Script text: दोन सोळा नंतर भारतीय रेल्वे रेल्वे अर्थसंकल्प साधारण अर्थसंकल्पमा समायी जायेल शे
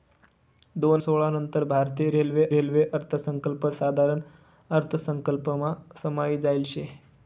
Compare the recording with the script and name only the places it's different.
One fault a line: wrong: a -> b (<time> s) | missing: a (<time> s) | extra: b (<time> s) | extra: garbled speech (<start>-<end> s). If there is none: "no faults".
no faults